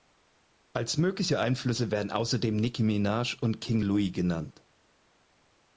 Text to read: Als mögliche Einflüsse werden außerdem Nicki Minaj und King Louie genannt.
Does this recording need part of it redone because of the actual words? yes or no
no